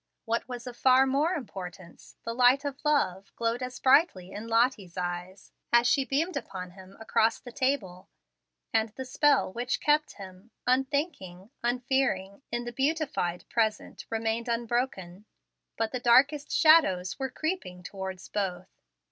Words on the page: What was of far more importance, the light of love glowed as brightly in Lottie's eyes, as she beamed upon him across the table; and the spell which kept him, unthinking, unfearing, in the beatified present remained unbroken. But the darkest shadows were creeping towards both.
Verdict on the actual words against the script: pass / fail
pass